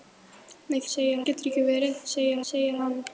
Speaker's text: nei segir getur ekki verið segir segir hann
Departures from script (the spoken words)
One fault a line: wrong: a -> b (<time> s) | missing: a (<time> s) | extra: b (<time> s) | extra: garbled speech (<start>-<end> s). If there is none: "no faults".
no faults